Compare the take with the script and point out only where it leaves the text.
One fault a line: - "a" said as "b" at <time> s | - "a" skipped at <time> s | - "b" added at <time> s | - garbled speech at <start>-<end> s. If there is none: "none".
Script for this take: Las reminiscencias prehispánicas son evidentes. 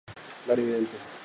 - "reminiscencias prehispánicas son" skipped at 0.6 s